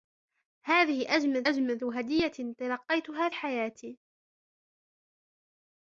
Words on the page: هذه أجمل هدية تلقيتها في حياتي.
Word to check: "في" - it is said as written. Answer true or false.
false